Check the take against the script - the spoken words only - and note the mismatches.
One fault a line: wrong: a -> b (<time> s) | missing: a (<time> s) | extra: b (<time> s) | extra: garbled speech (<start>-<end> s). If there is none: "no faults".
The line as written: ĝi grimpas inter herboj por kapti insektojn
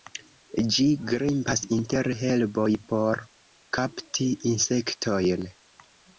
no faults